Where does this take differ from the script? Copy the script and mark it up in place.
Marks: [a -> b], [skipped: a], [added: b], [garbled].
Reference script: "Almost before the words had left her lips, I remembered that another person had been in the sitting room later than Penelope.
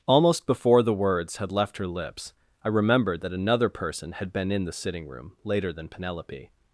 "Almost before the words had left her lips, I remembered that another person had been in the sitting room later than Penelope.